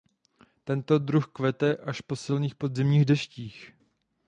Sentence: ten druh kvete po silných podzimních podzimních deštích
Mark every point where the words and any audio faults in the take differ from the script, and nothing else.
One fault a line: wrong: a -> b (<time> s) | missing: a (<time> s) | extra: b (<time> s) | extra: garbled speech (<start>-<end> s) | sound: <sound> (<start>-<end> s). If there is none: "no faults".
wrong: ten -> tento (0.6 s)
extra: až (1.8 s)
missing: podzimních (3.0 s)